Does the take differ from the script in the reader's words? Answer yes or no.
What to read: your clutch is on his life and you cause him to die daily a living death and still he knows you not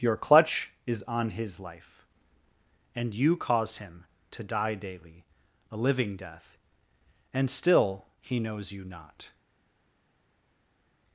no